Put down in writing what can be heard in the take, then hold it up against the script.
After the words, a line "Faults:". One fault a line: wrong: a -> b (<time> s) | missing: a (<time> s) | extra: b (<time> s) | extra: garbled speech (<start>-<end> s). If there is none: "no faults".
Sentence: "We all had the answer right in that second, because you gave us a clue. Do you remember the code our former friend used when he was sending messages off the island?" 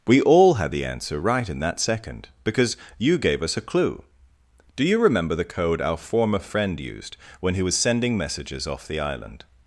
"We all had the answer right in that second, because you gave us a clue. Do you remember the code our former friend used when he was sending messages off the island?"
Faults:
no faults